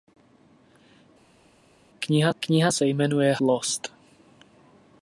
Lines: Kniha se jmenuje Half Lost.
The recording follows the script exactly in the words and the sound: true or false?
false